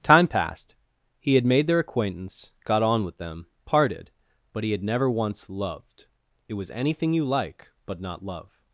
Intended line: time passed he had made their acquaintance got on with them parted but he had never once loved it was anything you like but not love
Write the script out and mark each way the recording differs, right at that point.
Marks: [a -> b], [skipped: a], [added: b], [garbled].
time passed he had made their acquaintance got on with them parted but he had never once loved it was anything you like but not love